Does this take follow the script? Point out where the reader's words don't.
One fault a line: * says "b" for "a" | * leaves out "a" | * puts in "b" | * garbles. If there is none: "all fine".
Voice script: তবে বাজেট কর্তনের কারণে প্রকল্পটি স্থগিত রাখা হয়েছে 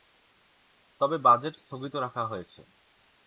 * leaves out "কর্তনের কারণে প্রকল্পটি"